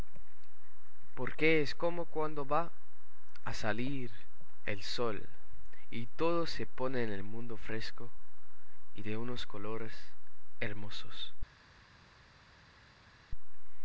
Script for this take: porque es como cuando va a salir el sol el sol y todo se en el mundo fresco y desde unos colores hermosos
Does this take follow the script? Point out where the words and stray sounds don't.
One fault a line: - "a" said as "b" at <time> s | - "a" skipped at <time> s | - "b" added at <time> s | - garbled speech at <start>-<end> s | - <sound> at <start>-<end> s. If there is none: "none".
- "el sol" skipped at 5.3 s
- "pone" added at 6.7 s
- "desde" said as "de" at 9.0 s